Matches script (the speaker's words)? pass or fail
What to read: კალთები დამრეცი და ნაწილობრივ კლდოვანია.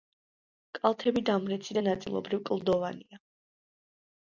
pass